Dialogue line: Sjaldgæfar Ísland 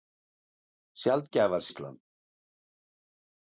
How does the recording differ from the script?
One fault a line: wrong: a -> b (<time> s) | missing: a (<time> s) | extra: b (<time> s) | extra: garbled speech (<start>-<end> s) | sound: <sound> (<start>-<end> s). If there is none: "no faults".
no faults